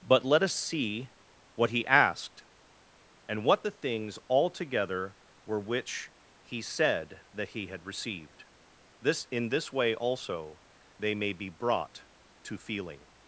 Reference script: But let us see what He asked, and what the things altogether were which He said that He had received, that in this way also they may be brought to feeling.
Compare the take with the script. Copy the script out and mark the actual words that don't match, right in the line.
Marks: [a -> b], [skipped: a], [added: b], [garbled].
But let us see what He asked, and what the things altogether were which He said that He had received, [that -> this] in this way also they may be brought to feeling.